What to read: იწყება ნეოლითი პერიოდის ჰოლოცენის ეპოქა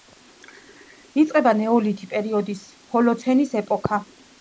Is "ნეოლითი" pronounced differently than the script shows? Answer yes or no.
no